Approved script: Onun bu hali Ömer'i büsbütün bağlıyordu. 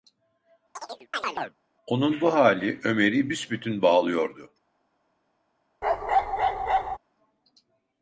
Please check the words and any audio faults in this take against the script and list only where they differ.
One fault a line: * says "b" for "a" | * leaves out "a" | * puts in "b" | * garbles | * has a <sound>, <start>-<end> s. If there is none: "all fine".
* has a chirp, 0.8-1.6 s
* has a bark, 5.8-7.0 s